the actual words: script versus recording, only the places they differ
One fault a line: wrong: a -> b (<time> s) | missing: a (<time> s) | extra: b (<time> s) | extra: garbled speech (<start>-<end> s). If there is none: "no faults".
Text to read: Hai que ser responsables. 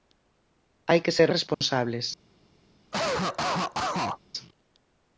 no faults